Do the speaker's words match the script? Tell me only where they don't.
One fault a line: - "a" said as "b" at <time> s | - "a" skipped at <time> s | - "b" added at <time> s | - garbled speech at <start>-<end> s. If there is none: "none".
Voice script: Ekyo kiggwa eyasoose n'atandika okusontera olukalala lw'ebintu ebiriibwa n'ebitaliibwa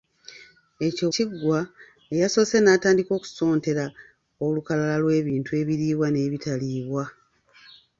none